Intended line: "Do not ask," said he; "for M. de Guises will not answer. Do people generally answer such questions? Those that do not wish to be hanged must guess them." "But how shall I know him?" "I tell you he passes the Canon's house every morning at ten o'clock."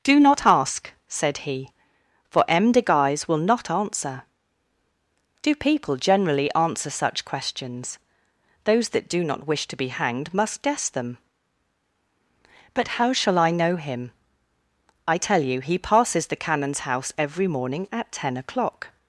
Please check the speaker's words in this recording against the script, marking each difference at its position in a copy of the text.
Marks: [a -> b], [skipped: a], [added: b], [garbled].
"Do not ask," said he; "for M. de [Guises -> Guise] will not answer. Do people generally answer such questions? Those that do not wish to be hanged must guess them." "But how shall I know him?" "I tell you he passes the Canon's house every morning at ten o'clock."